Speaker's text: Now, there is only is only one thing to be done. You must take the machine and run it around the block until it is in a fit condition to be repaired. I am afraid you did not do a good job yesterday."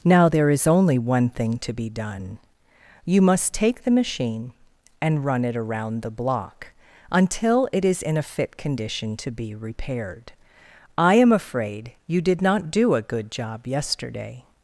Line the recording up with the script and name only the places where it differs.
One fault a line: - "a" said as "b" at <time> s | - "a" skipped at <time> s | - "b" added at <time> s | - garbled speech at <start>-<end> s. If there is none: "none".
- "is only" skipped at 1.0 s